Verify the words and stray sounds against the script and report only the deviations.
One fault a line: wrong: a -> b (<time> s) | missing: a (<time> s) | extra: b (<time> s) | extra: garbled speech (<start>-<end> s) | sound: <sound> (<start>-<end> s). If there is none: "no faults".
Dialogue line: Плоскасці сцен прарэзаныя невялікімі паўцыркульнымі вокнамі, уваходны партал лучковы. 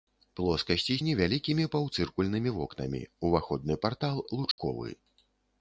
missing: сцен прарэзаныя (0.9 s)
sound: dropout (4.5-4.6 s)